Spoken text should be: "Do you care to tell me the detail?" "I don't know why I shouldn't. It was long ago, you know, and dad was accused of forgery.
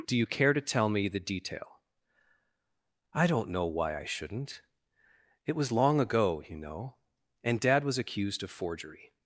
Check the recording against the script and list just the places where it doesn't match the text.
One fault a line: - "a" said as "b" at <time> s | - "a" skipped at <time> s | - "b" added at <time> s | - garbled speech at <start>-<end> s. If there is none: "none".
none